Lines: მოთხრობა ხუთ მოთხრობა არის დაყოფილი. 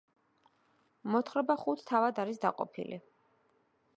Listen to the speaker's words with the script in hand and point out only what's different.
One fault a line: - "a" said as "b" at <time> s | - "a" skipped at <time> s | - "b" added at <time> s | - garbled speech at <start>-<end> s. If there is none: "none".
- "მოთხრობა" said as "თავად" at 1.9 s